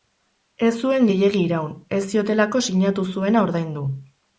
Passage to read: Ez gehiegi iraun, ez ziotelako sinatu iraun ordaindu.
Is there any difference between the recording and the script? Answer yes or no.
yes